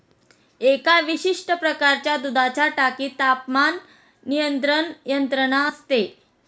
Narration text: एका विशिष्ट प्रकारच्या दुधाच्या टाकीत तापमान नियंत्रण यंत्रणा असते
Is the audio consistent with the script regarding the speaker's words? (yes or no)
yes